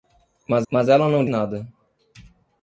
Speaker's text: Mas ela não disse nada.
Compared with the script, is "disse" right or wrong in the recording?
wrong